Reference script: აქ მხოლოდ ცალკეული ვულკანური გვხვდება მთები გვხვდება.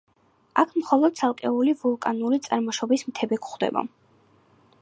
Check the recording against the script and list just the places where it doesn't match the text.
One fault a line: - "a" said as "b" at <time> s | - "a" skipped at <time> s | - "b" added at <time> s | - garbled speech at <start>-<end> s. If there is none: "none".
- "გვხვდება" said as "წარმოშობის" at 2.5 s